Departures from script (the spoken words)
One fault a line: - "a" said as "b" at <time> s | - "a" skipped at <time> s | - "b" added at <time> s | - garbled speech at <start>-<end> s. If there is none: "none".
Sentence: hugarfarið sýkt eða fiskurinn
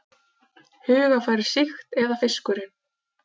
none